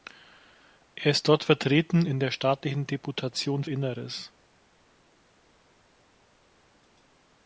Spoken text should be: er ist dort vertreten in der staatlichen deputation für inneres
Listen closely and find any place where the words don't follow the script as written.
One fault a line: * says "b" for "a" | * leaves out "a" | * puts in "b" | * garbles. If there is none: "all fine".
* leaves out "für"